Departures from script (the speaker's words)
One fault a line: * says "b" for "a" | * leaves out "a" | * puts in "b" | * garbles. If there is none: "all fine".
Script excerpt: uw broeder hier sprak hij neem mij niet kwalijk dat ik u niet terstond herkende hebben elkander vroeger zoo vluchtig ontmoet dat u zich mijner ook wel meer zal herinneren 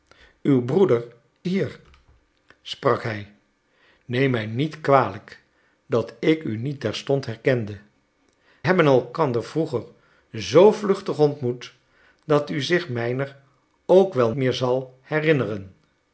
all fine